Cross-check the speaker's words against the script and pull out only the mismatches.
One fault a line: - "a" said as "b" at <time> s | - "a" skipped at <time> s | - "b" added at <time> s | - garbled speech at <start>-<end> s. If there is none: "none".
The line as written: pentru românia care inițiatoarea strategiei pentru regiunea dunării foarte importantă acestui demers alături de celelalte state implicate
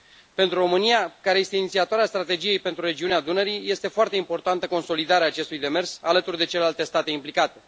- "este" added at 1.4 s
- "este" added at 3.7 s
- "consolidarea" added at 4.6 s